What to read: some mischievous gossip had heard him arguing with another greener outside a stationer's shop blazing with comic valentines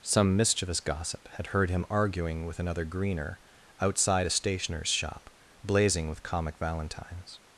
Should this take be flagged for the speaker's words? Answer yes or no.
no